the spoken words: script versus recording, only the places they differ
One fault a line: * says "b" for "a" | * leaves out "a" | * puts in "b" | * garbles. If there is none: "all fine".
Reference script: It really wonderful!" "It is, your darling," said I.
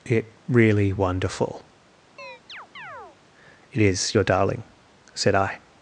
all fine